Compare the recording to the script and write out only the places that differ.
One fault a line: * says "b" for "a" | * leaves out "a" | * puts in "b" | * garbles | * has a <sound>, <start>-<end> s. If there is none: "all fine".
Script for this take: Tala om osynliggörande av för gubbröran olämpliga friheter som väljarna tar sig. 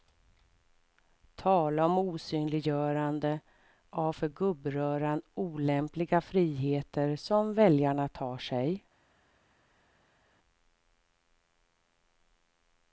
all fine